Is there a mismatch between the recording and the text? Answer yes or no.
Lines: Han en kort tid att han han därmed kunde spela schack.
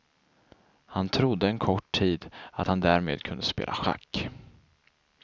yes